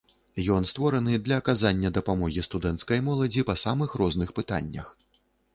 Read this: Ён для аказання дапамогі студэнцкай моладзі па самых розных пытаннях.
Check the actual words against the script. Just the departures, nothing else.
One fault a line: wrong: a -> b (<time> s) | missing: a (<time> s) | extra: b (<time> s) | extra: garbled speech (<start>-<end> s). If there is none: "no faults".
extra: створаны (0.7 s)